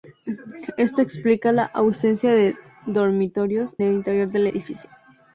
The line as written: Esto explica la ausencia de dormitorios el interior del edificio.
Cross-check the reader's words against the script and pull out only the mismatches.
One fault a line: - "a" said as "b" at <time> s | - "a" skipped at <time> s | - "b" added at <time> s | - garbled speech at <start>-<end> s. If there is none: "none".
none